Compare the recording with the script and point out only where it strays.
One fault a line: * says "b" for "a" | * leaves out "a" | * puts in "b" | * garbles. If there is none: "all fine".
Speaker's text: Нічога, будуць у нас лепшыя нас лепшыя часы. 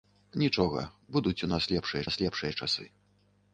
all fine